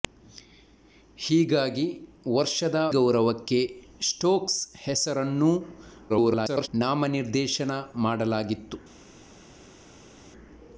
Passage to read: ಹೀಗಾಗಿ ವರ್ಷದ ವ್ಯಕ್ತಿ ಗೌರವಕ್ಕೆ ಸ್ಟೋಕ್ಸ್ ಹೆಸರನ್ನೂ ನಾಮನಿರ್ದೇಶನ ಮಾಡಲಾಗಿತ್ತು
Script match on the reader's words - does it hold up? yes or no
no